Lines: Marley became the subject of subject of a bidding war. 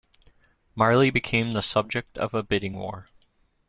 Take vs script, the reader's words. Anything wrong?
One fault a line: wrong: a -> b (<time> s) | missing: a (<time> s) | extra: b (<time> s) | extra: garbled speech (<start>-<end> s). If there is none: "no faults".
missing: subject of (2.3 s)